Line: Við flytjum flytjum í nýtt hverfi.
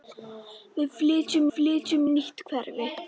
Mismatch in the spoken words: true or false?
false